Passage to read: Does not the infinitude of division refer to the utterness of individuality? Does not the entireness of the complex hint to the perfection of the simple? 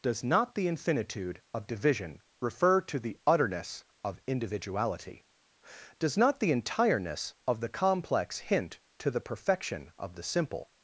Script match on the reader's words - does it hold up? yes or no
yes